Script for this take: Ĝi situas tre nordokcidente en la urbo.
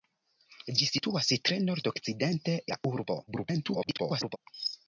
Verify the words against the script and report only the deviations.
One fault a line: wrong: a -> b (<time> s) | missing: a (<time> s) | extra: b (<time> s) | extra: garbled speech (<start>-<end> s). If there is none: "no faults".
missing: en (2.6 s)
extra: garbled speech (3.3-4.4 s)